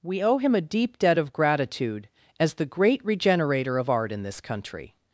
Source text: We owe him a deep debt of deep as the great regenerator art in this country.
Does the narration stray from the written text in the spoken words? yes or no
yes